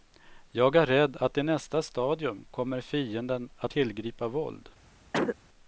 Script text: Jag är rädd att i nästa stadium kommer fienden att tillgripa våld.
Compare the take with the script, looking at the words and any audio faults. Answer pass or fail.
fail